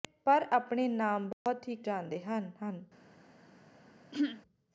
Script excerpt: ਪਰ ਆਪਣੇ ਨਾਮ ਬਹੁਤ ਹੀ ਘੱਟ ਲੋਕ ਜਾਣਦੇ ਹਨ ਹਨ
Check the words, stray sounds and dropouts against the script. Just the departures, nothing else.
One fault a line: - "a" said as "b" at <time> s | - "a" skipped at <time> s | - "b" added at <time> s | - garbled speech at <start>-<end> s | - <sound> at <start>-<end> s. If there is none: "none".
- dropout at 1.3-1.5 s
- "ਘੱਟ ਲੋਕ" skipped at 1.8 s
- throat clearing at 4.1-4.4 s